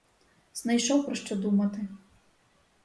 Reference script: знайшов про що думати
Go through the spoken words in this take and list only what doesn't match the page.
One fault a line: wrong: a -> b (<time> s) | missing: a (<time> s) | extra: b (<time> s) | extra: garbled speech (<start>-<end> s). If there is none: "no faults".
no faults